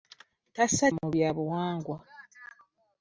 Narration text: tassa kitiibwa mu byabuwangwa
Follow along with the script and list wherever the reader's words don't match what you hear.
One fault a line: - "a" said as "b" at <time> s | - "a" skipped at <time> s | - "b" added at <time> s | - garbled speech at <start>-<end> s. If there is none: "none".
- "kitiibwa" skipped at 0.9 s